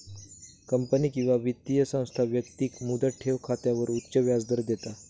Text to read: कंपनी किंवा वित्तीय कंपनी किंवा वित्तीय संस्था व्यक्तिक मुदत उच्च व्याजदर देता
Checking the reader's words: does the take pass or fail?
fail